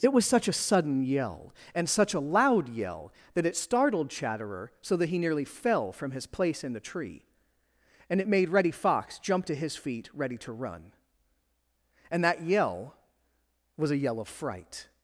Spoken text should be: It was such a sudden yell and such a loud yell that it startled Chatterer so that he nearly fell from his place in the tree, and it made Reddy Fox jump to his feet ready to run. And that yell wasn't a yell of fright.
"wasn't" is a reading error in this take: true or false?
true